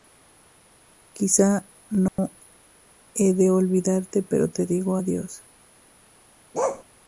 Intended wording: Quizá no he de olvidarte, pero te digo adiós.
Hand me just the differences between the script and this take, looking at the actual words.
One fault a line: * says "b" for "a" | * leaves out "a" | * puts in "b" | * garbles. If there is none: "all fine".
all fine